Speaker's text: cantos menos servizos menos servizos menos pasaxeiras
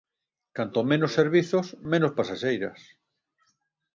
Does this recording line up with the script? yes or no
no